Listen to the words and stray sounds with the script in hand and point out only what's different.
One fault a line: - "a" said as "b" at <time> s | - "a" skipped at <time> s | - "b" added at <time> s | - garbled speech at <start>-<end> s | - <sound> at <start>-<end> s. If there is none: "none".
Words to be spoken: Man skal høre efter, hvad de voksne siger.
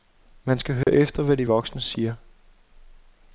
- dropout at 0.8-0.9 s